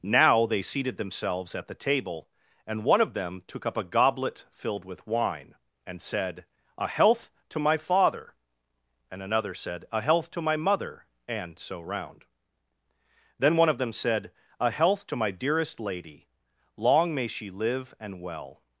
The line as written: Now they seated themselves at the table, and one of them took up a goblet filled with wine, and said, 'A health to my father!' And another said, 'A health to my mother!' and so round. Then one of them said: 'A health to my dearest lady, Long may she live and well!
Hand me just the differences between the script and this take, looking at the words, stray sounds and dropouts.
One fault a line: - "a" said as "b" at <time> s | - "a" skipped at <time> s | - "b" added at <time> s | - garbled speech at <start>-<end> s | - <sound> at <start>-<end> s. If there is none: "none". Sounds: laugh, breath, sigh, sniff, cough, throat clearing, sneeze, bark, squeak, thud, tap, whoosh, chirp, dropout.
none